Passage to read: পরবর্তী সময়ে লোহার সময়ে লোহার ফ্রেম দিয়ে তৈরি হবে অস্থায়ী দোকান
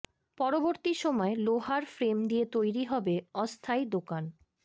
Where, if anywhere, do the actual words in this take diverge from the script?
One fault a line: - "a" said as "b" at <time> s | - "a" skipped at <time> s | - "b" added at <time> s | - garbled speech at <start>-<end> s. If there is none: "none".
- "সময়ে লোহার" skipped at 1.8 s